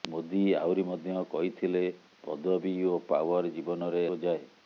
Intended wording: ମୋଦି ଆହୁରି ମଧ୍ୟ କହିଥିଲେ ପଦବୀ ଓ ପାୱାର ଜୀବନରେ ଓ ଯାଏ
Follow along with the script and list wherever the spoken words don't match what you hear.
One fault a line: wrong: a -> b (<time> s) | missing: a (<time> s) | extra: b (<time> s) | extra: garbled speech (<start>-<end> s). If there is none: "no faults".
no faults